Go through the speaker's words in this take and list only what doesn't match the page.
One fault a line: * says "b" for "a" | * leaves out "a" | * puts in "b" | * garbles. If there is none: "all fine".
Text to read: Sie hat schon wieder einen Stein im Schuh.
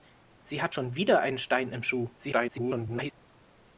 * garbles